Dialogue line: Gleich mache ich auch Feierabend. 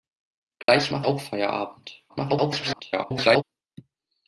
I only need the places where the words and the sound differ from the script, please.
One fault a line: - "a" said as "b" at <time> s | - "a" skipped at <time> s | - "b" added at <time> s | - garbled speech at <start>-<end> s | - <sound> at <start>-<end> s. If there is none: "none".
- dropout at 0.6-0.7 s
- "ich" skipped at 1.1 s
- garbled speech at 2.1-3.4 s